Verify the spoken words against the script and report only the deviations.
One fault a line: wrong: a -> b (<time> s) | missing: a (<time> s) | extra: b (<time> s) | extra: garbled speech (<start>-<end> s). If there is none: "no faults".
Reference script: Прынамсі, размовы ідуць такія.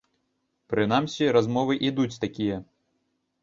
no faults